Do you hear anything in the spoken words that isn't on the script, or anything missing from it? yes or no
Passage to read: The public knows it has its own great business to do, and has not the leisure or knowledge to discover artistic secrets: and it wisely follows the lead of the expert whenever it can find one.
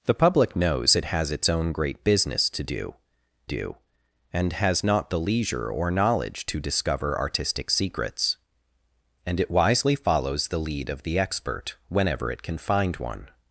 yes